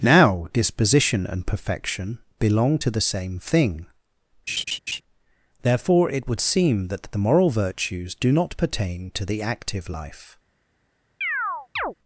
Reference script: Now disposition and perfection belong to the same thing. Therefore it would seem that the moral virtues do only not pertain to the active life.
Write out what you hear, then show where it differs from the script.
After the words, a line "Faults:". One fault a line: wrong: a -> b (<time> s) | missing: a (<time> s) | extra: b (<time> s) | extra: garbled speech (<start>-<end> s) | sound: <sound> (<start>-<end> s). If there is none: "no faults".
Now disposition and perfection belong to the same thing. Therefore it would seem that the moral virtues do not pertain to the active life.
Faults:
sound: laugh (4.5-5.0 s)
missing: only (8.3 s)
sound: chirp (11.2-11.9 s)